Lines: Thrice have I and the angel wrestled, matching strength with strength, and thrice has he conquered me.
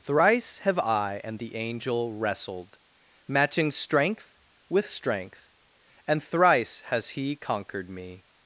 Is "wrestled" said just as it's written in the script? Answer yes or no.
yes